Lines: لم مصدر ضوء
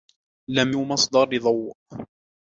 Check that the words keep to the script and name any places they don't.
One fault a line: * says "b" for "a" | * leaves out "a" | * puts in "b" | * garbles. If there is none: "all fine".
all fine